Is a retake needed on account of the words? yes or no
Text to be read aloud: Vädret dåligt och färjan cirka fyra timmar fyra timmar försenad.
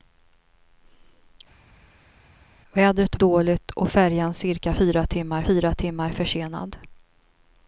no